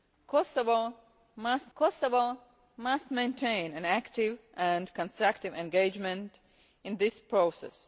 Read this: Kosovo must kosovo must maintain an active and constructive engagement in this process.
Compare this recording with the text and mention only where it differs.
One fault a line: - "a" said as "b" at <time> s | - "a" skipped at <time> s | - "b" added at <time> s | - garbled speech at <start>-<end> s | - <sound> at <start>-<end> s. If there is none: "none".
none